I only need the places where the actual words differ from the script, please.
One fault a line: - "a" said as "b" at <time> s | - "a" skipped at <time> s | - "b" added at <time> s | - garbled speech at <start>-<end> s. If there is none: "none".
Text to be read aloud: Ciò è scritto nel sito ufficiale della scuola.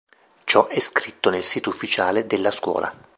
none